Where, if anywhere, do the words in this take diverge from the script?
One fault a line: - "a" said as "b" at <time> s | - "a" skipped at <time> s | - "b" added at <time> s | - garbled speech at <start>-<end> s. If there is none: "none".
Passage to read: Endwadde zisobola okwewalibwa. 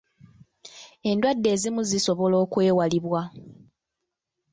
- "ezimu" added at 1.6 s